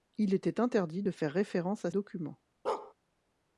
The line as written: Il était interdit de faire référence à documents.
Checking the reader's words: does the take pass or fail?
pass